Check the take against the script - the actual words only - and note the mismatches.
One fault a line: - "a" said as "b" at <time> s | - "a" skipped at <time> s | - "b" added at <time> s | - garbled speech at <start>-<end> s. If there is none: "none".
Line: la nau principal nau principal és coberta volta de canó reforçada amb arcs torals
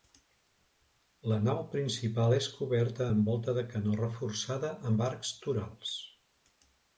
- "nau principal" skipped at 2.3 s
- "amb" added at 3.1 s